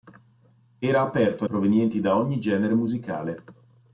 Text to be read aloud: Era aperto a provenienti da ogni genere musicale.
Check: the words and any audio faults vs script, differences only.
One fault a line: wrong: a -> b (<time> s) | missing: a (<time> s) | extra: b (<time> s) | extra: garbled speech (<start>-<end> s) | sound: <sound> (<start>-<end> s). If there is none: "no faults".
no faults